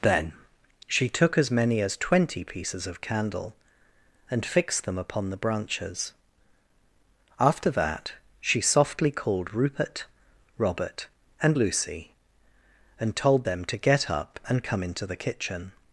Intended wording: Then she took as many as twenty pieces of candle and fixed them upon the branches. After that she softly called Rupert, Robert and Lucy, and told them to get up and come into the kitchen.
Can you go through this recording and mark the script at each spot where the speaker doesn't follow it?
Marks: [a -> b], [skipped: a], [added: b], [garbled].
Then she took as many as twenty pieces of candle and fixed them upon the branches. After that she softly called Rupert, Robert and Lucy, and told them to get up and come into the kitchen.